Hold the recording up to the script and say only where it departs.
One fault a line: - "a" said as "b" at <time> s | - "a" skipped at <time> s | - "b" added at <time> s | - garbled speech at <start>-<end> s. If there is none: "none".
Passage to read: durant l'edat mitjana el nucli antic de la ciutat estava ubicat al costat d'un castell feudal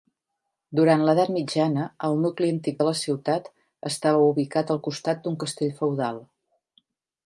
none